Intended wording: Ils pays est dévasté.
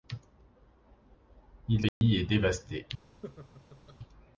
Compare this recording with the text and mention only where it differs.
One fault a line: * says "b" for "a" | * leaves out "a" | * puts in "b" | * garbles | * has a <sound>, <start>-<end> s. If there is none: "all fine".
* has a dropout, 1.9-2.0 s
* has a laugh, 3.2-4.0 s